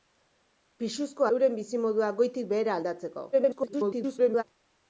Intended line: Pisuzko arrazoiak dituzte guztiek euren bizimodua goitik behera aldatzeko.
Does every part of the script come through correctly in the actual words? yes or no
no